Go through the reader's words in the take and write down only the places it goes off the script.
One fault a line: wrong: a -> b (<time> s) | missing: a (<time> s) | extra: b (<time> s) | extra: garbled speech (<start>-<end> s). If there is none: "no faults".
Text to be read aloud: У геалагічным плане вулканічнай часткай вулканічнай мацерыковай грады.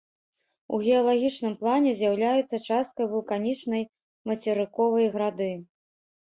wrong: вулканічнай -> з'яўляюцца (2.0 s)